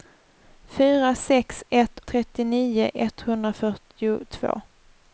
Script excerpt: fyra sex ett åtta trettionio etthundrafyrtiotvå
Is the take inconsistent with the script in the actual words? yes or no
yes